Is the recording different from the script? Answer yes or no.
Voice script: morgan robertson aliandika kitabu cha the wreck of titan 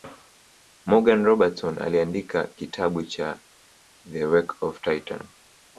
no